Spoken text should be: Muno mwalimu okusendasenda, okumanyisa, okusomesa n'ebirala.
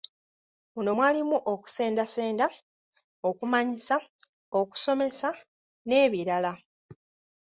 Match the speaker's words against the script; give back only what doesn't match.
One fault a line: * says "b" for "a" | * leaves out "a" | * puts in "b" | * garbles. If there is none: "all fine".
all fine